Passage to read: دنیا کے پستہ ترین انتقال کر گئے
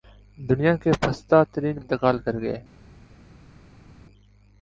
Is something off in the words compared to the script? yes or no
no